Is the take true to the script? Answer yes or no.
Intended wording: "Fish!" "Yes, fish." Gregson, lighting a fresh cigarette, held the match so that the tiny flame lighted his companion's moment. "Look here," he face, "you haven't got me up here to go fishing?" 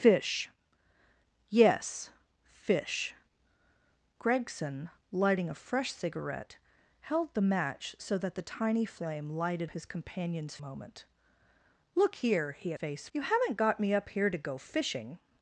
yes